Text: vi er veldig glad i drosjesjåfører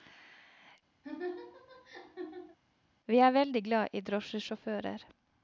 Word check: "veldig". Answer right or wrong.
right